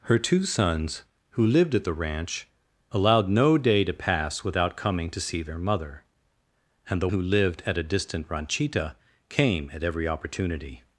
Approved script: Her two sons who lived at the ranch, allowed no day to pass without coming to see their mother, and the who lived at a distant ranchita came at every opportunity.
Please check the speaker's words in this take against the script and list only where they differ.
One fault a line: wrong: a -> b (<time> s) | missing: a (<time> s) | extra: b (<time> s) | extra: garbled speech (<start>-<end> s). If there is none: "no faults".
no faults